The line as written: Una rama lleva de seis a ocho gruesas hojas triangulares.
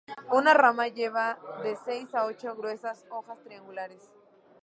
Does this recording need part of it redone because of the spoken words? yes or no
no